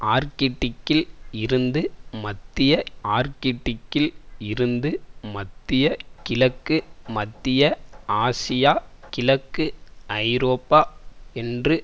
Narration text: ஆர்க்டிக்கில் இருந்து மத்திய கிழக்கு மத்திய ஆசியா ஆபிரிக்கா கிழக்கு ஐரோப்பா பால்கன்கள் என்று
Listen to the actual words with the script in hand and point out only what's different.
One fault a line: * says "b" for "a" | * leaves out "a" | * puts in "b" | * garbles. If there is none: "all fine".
* puts in "ஆர்க்டிக்கில் இருந்து மத்திய"
* leaves out "ஆபிரிக்கா"
* leaves out "பால்கன்கள்"